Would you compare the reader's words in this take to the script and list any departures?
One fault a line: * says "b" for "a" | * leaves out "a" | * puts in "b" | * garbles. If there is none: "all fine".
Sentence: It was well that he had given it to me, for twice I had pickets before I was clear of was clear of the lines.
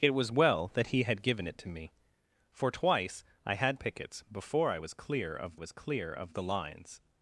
all fine